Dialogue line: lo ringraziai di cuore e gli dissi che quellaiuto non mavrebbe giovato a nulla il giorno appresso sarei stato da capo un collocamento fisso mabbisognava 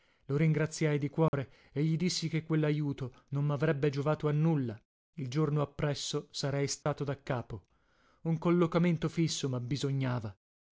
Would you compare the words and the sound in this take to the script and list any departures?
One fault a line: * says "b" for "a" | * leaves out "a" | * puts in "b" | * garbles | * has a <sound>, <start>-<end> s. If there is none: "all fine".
* has a dropout, 1.3-1.3 s
* has a dropout, 6.8-6.9 s